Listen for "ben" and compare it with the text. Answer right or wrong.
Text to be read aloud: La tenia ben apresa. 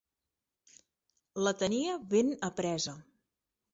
right